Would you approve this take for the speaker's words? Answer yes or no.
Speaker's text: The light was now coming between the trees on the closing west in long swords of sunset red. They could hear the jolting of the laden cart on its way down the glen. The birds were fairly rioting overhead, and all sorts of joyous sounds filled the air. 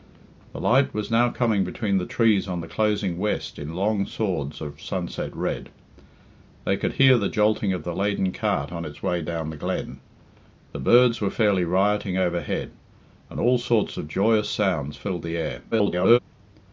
no